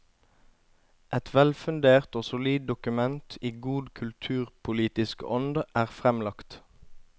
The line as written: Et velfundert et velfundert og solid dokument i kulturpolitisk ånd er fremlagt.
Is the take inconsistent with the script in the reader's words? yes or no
yes